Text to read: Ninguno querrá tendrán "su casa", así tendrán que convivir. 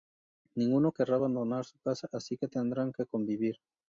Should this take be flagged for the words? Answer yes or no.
yes